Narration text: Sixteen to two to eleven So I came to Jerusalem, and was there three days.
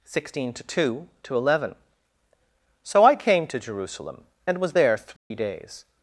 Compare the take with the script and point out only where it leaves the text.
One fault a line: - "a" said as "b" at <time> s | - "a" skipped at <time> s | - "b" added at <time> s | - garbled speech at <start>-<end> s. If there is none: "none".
none